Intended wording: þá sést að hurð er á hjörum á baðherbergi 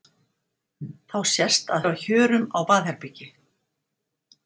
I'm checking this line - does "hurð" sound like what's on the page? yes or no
no